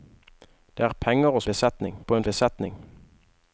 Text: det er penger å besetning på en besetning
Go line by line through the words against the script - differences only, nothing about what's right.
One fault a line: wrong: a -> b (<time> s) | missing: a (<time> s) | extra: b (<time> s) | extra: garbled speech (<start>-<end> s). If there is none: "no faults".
no faults